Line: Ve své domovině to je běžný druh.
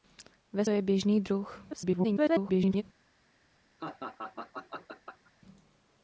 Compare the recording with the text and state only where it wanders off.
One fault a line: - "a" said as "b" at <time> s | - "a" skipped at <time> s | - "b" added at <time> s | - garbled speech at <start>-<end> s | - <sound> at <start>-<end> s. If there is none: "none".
- "své domovině to" skipped at 0.7 s
- garbled speech at 1.7-2.8 s
- laugh at 3.8-5.3 s